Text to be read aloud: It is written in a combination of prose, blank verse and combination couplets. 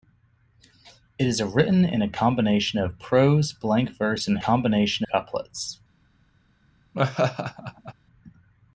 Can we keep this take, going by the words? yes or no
yes